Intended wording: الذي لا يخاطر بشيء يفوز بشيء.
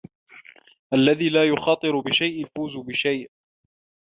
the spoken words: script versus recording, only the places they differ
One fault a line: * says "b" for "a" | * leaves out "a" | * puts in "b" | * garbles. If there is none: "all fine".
all fine